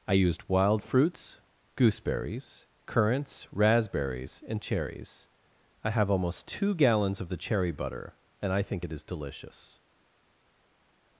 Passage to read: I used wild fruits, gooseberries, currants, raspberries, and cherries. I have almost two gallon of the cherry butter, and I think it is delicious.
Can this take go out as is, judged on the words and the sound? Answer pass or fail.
fail